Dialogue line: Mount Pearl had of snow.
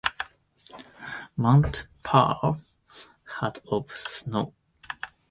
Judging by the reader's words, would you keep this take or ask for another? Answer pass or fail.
pass